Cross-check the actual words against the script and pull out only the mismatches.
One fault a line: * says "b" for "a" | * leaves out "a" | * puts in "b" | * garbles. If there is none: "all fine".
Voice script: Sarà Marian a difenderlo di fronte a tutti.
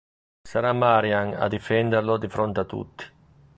all fine